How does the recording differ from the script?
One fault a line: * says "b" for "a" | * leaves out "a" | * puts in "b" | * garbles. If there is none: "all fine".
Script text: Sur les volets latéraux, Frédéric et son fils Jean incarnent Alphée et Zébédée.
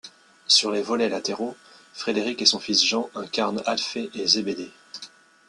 all fine